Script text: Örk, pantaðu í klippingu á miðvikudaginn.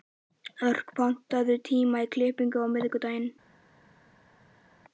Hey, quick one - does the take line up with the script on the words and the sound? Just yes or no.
no